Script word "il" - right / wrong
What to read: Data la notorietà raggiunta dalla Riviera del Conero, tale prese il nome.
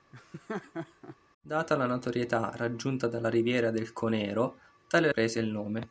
right